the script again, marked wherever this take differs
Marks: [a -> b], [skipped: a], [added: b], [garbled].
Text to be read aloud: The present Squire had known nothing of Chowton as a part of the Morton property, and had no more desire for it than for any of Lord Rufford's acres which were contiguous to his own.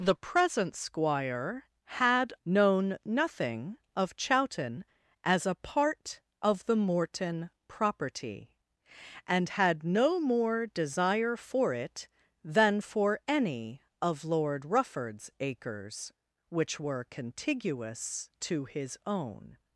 The present Squire had known nothing of Chowton as a part of the Morton property, and had no more desire for it than for any of Lord Rufford's acres which were contiguous to his own.